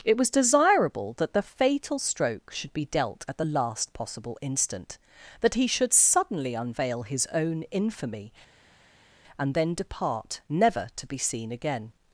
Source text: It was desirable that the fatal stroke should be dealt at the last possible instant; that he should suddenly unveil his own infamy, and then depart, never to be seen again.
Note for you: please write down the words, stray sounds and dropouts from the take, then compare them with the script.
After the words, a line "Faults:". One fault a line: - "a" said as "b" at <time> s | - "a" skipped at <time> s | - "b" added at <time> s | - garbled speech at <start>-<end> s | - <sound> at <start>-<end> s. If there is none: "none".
It was desirable that the fatal stroke should be dealt at the last possible instant; that he should suddenly unveil his own infamy, and then depart, never to be seen again.
Faults:
none